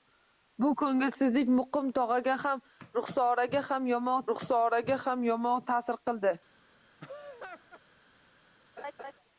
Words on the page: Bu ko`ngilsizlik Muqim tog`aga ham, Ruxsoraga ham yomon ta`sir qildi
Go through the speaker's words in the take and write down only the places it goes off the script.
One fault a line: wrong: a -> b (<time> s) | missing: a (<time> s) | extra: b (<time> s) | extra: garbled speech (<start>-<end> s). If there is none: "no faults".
extra: Ruxsoraga ham yomon (4.3 s)